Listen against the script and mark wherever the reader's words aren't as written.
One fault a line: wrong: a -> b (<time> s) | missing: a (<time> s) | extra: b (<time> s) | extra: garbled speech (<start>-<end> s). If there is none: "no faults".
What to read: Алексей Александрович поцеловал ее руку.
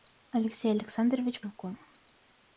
missing: поцеловал ее (1.4 s)